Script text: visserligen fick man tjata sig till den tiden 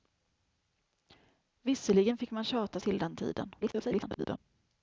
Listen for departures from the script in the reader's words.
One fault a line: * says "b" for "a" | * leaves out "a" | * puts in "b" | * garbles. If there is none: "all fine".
* leaves out "sig"
* garbles